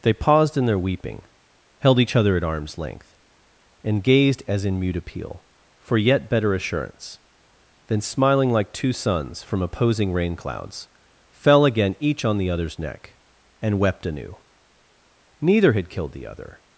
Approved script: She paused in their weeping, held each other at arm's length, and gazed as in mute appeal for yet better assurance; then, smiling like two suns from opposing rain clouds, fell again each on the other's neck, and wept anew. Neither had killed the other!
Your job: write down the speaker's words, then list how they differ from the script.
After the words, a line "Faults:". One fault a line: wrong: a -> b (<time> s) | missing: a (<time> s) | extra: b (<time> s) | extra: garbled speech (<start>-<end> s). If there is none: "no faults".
They paused in their weeping, held each other at arm's length, and gazed as in mute appeal for yet better assurance; then, smiling like two suns from opposing rain clouds, fell again each on the other's neck, and wept anew. Neither had killed the other!
Faults:
wrong: She -> They (0.0 s)